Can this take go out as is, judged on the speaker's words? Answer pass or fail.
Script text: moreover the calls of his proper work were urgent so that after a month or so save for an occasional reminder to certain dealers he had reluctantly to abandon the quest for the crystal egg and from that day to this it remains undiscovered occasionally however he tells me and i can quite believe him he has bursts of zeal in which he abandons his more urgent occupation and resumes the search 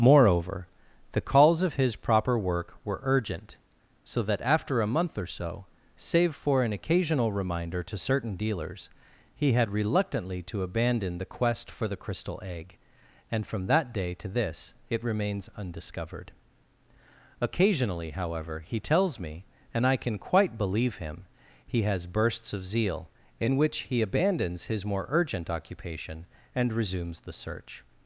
pass